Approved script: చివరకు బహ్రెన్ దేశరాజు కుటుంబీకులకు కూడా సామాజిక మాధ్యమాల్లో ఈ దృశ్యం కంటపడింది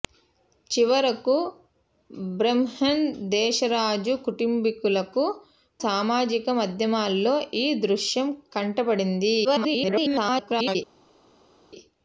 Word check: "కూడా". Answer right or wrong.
wrong